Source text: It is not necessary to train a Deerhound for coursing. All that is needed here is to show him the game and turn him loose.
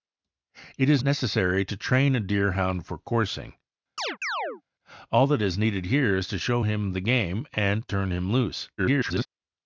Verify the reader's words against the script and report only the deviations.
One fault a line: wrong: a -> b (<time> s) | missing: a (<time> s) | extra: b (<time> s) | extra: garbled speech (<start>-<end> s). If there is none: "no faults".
missing: not (1.0 s)
extra: garbled speech (8.8-9.3 s)